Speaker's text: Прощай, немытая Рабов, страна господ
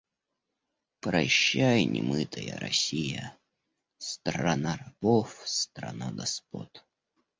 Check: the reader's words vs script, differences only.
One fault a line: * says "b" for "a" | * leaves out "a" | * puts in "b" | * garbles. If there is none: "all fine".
* puts in "Россия Страна"